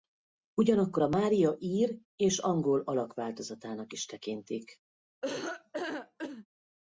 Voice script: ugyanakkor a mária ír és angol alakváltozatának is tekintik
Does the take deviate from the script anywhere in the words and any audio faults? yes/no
yes